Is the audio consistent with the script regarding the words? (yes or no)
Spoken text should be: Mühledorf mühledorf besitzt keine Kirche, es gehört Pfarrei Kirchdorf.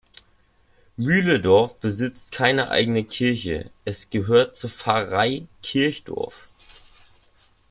no